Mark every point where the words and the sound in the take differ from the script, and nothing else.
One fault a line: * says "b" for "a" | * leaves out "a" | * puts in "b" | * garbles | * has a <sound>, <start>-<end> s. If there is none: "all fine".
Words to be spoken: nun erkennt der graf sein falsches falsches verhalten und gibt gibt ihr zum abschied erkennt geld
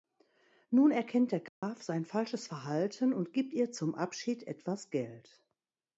* has a dropout, 1.5-1.6 s
* leaves out "falsches"
* leaves out "gibt"
* says "etwas" for "erkennt"